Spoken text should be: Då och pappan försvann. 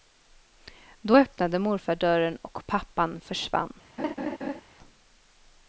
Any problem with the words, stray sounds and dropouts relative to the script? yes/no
yes